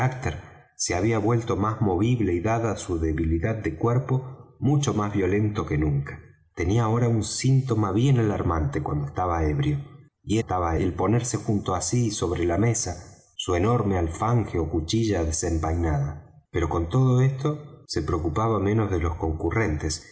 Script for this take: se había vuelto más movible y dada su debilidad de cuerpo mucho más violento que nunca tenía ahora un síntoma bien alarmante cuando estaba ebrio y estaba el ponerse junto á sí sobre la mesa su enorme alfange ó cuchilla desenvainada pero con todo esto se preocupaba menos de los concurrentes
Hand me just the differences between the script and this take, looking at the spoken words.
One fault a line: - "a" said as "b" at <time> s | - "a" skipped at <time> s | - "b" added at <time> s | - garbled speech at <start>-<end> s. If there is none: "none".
none